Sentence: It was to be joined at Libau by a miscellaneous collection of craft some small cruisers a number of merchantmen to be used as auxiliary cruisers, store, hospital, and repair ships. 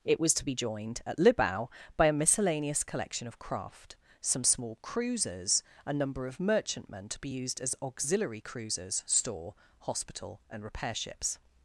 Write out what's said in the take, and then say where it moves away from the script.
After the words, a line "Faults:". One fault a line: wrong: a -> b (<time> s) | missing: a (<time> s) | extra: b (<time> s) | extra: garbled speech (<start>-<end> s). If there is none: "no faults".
It was to be joined at Libau by a miscellaneous collection of craft some small cruisers a number of merchantmen to be used as auxiliary cruisers, store, hospital, and repair ships.
Faults:
no faults